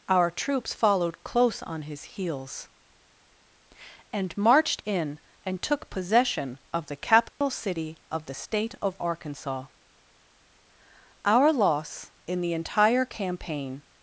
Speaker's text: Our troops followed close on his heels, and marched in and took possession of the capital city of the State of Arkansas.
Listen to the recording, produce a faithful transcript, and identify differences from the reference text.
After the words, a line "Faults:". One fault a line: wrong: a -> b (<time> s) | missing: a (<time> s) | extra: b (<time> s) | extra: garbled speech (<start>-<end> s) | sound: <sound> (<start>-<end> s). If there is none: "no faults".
Our troops followed close on his heels, and marched in and took possession of the capital city of the State of Arkansas. Our loss, in the entire campaign
Faults:
sound: dropout (7.3-7.4 s)
extra: Our loss in the entire campaign (11.2 s)